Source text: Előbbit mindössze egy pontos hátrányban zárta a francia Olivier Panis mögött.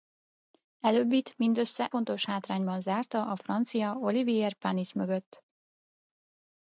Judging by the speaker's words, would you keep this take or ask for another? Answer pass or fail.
fail